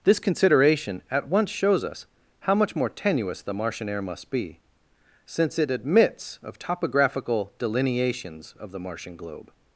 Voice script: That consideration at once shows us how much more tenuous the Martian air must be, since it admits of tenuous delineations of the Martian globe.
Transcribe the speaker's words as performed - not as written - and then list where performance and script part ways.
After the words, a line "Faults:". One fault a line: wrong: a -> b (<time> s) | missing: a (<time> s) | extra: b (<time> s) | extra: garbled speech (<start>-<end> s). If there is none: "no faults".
This consideration at once shows us how much more tenuous the Martian air must be, since it admits of topographical delineations of the Martian globe.
Faults:
wrong: That -> This (0.0 s)
wrong: tenuous -> topographical (6.6 s)